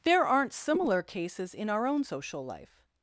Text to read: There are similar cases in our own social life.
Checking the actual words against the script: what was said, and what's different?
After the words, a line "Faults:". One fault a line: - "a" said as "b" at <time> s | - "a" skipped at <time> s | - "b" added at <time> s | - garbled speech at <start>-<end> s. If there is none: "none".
There aren't similar cases in our own social life.
Faults:
- "are" said as "aren't" at 0.2 s